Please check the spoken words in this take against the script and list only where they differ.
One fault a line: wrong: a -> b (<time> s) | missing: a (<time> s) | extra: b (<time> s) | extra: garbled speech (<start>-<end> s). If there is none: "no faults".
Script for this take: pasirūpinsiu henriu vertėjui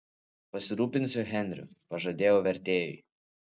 extra: pažadėjau (1.9 s)